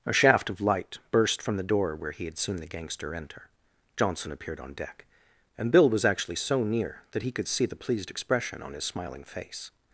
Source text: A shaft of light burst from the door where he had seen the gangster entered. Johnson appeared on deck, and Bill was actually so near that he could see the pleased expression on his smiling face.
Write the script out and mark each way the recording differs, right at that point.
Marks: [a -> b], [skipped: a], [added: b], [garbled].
A shaft of light burst from the door where he had seen the gangster [entered. -> enter] Johnson appeared on deck, and Bill was actually so near that he could see the pleased expression on his smiling face.